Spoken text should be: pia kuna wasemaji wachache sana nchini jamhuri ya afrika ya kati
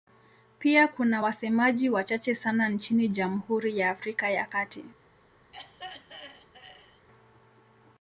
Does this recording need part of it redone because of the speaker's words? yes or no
no